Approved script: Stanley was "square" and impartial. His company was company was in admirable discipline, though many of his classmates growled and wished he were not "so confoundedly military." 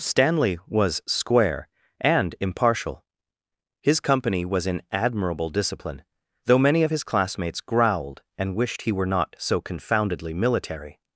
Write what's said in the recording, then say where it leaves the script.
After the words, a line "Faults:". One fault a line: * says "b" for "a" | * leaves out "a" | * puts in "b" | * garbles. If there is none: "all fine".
Stanley was "square" and impartial. His company was in admirable discipline, though many of his classmates growled and wished he were not "so confoundedly military."
Faults:
* leaves out "company was"